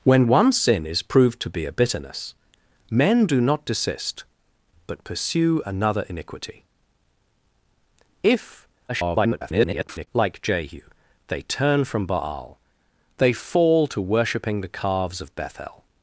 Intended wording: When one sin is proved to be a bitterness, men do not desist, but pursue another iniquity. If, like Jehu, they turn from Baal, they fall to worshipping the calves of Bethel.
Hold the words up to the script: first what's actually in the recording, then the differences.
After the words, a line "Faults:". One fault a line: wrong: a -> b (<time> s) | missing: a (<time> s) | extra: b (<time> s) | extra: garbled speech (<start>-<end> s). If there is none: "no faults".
When one sin is proved to be a bitterness, men do not desist, but pursue another iniquity. If, [garbled] like Jehu, they turn from Baal, they fall to worshipping the calves of Bethel.
Faults:
extra: garbled speech (8.9-10.1 s)